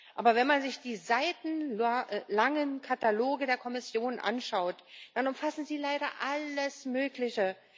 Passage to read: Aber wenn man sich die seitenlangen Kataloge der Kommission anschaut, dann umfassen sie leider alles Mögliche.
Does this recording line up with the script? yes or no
yes